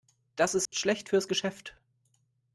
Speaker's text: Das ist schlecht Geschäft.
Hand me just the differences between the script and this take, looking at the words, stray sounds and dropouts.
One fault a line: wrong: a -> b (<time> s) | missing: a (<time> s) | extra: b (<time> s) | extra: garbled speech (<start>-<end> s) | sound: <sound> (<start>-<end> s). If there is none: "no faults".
sound: dropout (0.7-0.7 s)
extra: fürs (1.1 s)